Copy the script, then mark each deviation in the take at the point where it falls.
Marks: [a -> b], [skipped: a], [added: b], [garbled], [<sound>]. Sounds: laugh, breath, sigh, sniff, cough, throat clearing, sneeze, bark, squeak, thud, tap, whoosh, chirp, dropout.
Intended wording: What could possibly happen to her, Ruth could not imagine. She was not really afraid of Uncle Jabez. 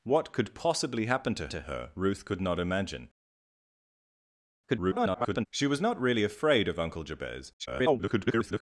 What could possibly happen to [added: to] her, Ruth could not imagine. [garbled] She was not really afraid of Uncle Jabez. [garbled]